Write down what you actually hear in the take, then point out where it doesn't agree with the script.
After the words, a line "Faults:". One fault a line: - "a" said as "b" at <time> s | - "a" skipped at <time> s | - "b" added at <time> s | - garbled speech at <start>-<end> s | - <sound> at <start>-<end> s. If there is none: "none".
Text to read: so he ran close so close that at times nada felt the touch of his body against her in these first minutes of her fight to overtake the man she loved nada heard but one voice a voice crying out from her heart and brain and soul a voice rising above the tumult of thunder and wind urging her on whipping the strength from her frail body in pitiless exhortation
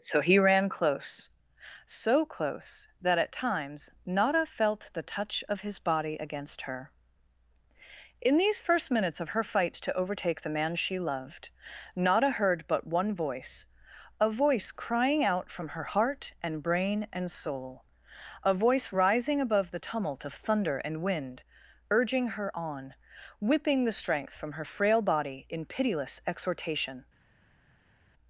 so he ran close so close that at times nada felt the touch of his body against her in these first minutes of her fight to overtake the man she loved nada heard but one voice a voice crying out from her heart and brain and soul a voice rising above the tumult of thunder and wind urging her on whipping the strength from her frail body in pitiless exhortation
Faults:
none